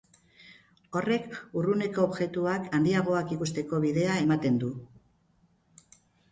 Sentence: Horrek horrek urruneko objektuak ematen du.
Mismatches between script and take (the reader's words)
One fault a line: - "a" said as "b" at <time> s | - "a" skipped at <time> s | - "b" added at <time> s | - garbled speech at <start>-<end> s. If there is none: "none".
- "horrek" skipped at 1.3 s
- "handiagoak ikusteko bidea" added at 2.8 s